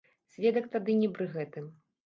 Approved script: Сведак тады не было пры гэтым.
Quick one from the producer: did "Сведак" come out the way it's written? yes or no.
yes